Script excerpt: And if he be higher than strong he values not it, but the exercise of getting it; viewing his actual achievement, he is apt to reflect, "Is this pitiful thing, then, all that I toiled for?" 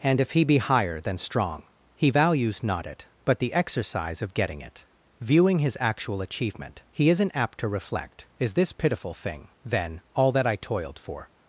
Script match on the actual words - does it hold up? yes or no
no